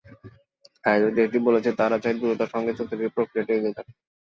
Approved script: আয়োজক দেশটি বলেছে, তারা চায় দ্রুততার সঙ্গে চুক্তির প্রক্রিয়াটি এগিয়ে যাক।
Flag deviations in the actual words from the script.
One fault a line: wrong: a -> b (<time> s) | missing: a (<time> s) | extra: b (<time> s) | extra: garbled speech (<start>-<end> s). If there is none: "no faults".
no faults